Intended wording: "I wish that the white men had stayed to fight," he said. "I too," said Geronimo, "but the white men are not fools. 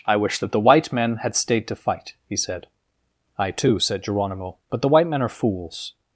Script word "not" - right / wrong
wrong